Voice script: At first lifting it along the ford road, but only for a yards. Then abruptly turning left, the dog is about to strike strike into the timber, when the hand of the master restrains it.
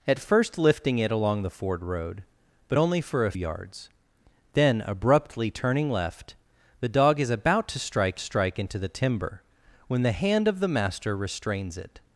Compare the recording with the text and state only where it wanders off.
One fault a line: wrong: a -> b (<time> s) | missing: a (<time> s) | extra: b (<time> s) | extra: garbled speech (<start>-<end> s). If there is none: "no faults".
no faults